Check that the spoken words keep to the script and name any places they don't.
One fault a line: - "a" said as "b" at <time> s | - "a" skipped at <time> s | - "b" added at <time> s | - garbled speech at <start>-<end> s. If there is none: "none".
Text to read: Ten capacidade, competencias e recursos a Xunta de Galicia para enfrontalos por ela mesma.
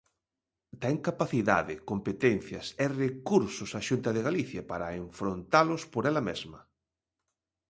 none